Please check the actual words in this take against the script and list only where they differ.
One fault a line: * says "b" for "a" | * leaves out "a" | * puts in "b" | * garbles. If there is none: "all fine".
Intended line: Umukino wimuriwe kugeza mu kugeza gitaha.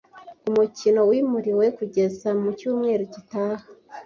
* says "cyumweru" for "kugeza"